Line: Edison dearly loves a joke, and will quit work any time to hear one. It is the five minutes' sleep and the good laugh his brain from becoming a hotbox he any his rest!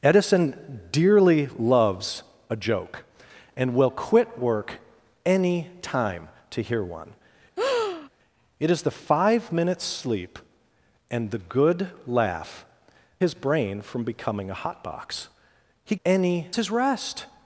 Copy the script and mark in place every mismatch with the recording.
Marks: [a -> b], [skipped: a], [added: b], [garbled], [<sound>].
Edison dearly loves a joke, and will quit work any time to hear one. [breath] It is the five minutes' sleep and the good laugh his brain from becoming a hotbox he any his rest!